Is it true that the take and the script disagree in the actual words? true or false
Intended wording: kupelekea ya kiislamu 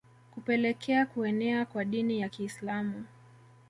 true